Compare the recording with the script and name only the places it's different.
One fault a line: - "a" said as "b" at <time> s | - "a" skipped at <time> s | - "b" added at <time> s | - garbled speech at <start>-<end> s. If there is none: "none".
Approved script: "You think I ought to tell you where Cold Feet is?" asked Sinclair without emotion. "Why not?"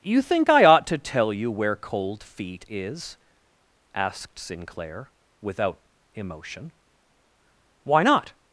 none